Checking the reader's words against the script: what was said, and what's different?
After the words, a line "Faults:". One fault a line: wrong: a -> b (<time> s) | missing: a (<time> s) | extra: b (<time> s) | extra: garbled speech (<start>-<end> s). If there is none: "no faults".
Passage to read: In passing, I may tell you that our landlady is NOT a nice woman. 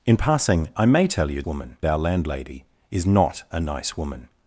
In passing, I may tell you woman our landlady is NOT a nice woman.
Faults:
wrong: that -> woman (1.4 s)